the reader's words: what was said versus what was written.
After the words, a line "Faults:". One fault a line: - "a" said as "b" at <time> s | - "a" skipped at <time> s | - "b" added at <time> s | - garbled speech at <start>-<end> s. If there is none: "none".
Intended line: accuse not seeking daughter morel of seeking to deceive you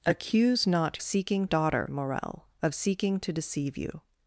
accuse not seeking daughter morel of seeking to deceive you
Faults:
none